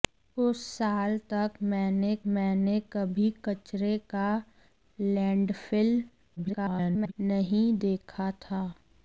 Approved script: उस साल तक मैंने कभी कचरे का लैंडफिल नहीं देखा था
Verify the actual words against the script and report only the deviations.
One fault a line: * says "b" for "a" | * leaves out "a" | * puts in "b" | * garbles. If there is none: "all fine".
* puts in "मैंने"
* garbles